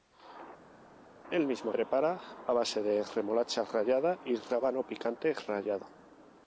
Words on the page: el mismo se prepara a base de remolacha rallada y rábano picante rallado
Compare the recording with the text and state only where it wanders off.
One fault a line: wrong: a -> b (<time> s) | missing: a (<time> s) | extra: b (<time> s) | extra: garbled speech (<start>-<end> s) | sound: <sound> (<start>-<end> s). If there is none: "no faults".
missing: se (1.7 s)